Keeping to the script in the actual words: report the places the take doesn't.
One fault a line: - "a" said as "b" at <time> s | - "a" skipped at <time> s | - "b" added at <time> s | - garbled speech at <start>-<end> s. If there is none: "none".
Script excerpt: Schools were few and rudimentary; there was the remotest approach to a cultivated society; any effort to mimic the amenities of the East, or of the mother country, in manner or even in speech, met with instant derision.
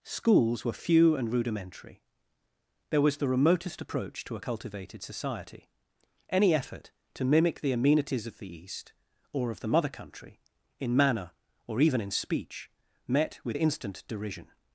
none